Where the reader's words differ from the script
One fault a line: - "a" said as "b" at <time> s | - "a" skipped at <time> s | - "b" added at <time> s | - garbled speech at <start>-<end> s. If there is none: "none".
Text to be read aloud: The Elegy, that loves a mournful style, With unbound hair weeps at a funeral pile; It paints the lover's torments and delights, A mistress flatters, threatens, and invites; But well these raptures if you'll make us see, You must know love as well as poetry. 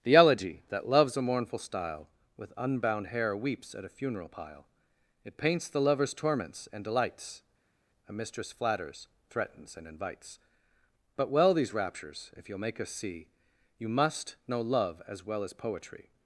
none